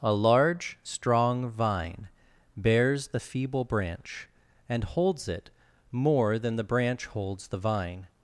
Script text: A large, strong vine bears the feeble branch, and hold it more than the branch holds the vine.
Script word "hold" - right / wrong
wrong